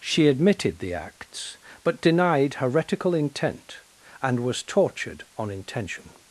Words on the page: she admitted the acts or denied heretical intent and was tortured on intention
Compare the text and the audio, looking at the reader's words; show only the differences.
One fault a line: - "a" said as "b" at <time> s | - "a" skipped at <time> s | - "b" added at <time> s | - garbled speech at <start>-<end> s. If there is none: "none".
- "or" said as "but" at 1.8 s